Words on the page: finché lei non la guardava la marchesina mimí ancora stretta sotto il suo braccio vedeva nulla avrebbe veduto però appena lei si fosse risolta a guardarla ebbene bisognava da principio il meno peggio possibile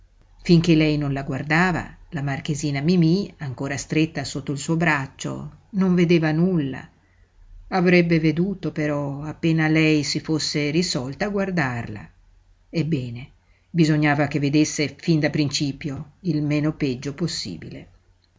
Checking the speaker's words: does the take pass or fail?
fail